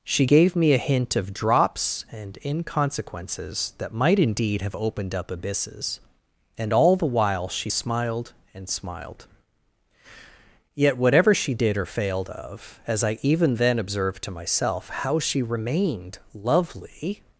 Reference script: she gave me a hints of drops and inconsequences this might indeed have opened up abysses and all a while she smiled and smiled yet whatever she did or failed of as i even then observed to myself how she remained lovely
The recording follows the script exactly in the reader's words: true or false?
false